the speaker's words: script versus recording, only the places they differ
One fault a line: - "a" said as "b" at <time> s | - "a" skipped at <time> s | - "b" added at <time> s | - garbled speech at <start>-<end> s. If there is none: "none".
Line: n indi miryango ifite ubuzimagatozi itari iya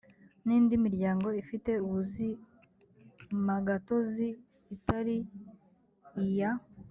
none